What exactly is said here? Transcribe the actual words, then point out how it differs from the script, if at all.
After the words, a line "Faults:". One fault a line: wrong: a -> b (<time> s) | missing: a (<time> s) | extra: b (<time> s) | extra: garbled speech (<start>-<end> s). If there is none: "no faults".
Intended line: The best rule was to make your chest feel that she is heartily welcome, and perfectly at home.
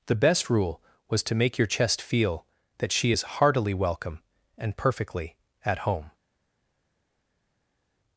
The best rule was to make your chest feel that she is heartily welcome, and perfectly at home.
Faults:
no faults